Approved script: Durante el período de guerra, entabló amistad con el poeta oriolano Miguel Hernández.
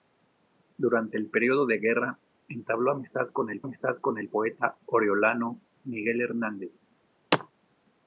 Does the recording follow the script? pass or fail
fail